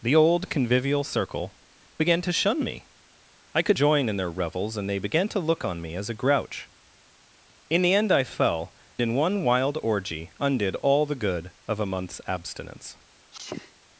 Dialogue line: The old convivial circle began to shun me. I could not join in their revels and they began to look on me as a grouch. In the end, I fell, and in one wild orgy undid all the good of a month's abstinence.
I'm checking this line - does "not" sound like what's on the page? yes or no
no